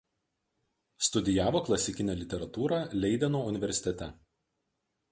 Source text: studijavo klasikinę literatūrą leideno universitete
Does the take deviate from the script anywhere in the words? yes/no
no